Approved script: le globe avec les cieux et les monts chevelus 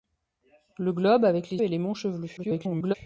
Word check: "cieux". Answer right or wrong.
wrong